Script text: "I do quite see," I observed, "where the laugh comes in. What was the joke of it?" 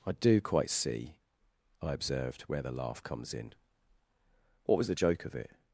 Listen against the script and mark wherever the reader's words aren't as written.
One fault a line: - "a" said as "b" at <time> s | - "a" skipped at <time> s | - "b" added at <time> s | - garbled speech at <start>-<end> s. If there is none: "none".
none